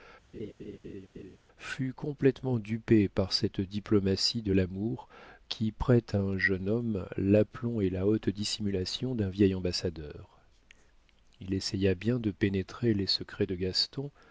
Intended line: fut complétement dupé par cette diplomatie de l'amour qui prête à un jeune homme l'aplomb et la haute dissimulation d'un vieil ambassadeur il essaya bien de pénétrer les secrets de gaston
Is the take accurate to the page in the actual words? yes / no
yes